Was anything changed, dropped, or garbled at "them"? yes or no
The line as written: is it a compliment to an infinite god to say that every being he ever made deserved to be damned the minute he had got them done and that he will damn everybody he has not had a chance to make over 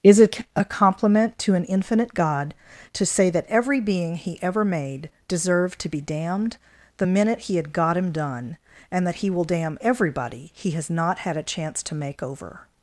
yes